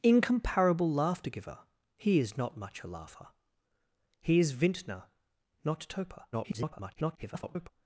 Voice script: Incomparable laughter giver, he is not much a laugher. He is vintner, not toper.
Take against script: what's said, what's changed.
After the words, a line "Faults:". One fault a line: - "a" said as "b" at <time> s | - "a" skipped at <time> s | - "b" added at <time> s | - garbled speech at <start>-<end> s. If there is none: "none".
Incomparable laughter giver, he is not much a laugher. He is vintner, not toper. [garbled]
Faults:
- garbled speech at 6.3-7.7 s